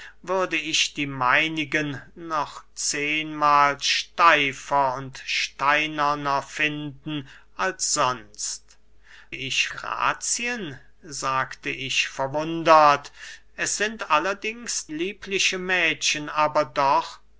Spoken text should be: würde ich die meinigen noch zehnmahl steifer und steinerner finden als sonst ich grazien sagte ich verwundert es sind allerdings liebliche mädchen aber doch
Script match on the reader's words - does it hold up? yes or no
yes